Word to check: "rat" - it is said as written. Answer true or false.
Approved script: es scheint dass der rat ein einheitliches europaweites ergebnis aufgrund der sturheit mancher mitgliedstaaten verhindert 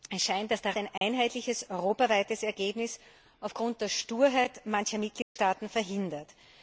false